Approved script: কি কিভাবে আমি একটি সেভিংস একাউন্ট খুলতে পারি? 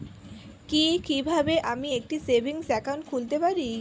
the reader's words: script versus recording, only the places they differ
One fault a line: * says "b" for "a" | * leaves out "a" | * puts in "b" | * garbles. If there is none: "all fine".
all fine